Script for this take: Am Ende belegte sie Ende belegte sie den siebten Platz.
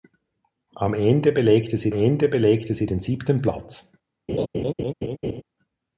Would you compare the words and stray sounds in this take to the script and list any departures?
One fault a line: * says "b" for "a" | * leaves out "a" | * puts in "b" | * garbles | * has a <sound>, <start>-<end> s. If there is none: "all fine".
* has a laugh, 4.3-5.4 s